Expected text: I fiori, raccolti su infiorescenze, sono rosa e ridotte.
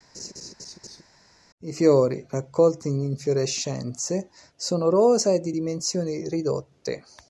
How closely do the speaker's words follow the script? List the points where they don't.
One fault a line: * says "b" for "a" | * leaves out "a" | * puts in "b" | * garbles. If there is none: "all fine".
* says "in" for "su"
* puts in "di dimensioni"